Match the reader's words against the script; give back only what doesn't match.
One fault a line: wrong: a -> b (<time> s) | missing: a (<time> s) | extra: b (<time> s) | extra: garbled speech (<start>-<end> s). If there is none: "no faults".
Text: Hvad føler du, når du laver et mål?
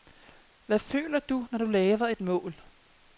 no faults